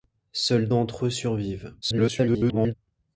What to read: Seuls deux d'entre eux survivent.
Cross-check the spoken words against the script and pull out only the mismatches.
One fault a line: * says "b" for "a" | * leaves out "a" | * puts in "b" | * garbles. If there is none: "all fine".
* leaves out "deux"
* garbles